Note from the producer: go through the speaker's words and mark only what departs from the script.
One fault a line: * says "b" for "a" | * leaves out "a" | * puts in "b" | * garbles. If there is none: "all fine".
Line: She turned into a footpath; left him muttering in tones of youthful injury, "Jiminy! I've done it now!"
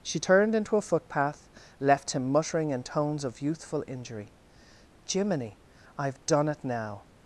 all fine